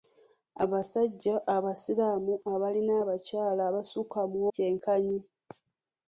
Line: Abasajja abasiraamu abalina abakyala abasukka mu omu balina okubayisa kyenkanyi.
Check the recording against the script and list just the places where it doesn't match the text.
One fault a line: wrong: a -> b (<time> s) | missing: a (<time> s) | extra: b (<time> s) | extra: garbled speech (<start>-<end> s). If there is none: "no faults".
missing: omu balina okubayisa (4.4 s)